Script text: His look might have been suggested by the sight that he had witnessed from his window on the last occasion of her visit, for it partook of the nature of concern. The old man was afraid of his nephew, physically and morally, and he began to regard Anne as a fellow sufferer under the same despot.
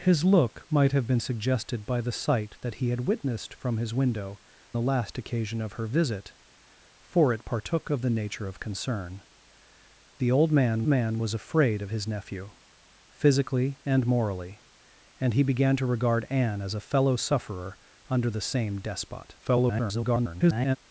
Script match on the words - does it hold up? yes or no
no